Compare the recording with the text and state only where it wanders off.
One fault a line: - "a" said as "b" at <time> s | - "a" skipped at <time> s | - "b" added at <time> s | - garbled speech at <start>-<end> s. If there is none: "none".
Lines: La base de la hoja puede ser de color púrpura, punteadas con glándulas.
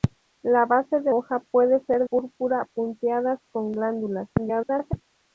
- "la" skipped at 1.1 s
- "de color" skipped at 2.1 s
- garbled speech at 4.4-4.9 s